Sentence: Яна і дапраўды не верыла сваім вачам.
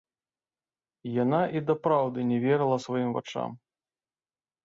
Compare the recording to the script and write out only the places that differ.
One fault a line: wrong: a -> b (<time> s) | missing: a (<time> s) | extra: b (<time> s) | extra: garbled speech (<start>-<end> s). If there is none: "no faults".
no faults